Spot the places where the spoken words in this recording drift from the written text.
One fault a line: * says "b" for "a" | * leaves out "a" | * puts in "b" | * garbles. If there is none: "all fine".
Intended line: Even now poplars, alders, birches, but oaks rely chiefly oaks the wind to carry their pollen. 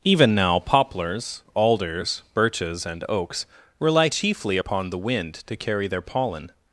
* says "and" for "but"
* says "upon" for "oaks"